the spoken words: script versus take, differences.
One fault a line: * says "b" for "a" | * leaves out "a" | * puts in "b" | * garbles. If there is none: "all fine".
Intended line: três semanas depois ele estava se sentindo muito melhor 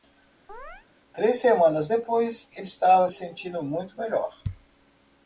* leaves out "se"